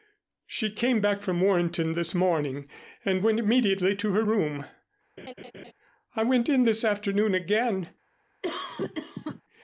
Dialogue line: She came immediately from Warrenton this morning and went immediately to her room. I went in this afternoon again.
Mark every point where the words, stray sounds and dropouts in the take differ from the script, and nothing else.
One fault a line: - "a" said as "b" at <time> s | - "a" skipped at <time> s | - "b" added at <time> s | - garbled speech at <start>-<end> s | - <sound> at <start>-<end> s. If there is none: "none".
- "immediately" said as "back" at 1.0 s
- laugh at 5.2-5.7 s
- cough at 8.4-9.4 s